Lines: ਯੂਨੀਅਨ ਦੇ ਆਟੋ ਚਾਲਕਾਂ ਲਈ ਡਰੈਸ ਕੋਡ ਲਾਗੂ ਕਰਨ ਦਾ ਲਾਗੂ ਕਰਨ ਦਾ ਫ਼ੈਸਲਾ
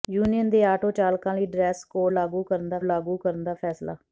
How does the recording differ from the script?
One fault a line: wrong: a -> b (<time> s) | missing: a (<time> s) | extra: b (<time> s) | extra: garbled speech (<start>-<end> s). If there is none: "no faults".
no faults